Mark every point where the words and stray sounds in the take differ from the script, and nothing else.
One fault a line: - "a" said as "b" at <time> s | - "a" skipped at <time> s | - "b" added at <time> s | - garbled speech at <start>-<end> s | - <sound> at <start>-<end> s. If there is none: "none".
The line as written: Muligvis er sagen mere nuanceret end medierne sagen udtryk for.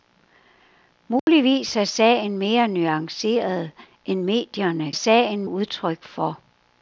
- dropout at 1.2-1.3 s